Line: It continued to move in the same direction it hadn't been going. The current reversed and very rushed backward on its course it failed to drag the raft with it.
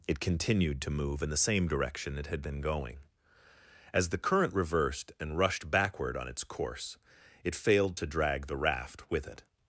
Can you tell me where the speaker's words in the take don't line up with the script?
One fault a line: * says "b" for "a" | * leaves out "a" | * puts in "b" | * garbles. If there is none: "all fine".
* says "had" for "hadn't"
* puts in "As"
* leaves out "very"